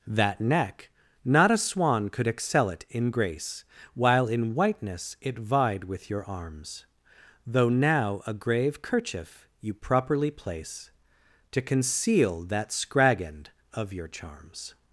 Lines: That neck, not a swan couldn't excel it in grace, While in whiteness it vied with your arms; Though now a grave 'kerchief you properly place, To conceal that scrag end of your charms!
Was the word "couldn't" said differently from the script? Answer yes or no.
yes